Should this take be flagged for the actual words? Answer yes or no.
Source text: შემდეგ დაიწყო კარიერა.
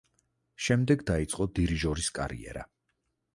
yes